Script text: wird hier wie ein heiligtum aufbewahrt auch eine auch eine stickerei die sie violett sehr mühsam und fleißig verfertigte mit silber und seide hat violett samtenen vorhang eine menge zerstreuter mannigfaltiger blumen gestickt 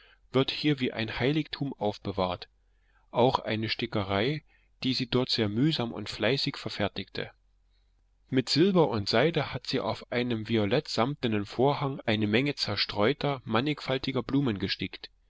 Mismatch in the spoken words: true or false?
true